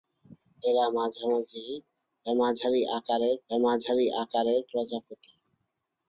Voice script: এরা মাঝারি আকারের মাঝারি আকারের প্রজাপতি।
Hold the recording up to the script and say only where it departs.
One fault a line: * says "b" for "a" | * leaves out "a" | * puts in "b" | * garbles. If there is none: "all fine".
all fine